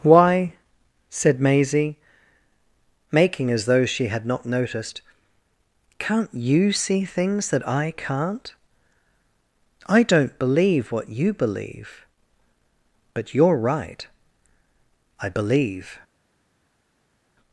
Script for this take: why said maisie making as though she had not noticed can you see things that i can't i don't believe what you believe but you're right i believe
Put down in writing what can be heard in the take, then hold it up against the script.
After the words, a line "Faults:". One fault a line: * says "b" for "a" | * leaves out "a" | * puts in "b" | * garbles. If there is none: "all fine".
why said maisie making as though she had not noticed can't you see things that i can't i don't believe what you believe but you're right i believe
Faults:
* says "can't" for "can"